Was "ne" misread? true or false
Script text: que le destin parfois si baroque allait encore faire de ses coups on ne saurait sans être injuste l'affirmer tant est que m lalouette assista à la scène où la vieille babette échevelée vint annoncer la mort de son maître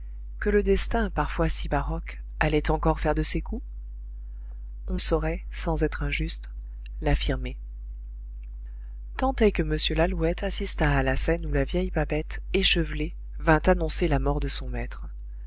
true